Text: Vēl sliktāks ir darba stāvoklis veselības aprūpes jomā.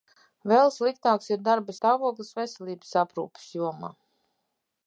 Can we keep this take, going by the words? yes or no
yes